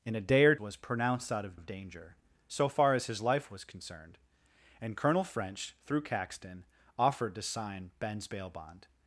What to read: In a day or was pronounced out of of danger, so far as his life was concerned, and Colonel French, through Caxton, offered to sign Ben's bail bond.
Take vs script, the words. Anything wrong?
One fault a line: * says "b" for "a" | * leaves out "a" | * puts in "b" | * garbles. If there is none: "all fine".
all fine